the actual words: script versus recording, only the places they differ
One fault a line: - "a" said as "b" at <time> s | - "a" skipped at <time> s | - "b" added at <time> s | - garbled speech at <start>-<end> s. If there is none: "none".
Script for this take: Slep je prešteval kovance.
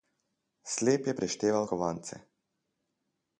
none